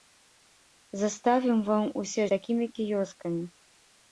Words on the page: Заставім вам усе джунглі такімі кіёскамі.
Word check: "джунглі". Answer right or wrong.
wrong